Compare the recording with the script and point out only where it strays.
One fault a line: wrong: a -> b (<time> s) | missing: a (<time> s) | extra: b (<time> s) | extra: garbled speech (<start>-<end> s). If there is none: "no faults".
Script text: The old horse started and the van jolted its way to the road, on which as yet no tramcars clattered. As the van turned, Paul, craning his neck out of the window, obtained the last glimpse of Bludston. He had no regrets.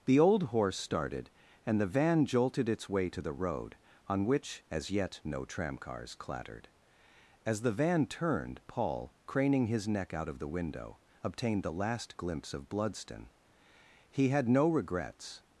no faults